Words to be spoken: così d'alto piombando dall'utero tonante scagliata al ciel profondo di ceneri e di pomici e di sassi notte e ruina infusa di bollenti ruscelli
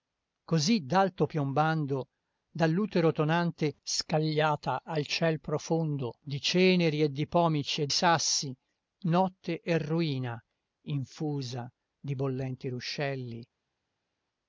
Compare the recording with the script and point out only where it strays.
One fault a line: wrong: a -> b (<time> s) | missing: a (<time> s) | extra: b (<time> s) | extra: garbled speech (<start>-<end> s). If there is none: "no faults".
missing: di (7.9 s)